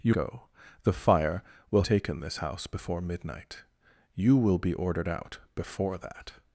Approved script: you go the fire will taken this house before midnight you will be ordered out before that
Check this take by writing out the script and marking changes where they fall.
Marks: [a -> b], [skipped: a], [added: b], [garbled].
you go the fire will taken this house before midnight you will be ordered out before that